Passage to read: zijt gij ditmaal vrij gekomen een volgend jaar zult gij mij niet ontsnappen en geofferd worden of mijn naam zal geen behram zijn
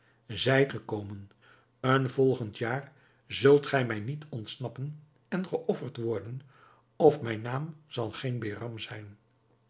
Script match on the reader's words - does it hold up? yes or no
no